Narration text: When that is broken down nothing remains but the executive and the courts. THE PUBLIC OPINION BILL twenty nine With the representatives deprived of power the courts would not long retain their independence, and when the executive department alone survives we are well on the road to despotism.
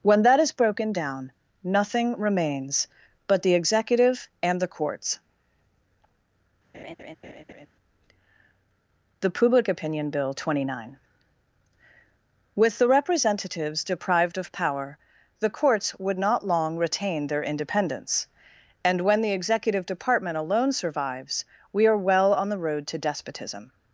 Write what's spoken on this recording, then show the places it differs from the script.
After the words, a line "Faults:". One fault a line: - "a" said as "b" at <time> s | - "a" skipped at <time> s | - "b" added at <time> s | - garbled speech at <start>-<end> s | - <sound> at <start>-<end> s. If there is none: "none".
When that is broken down nothing remains but the executive and the courts. THE PUBLIC OPINION BILL twenty nine With the representatives deprived of power the courts would not long retain their independence, and when the executive department alone survives we are well on the road to despotism.
Faults:
- laugh at 6.7-7.7 s